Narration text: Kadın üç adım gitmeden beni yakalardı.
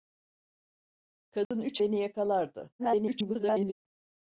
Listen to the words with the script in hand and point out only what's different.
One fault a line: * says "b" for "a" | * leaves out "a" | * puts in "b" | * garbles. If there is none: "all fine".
* leaves out "adım gitmeden"
* garbles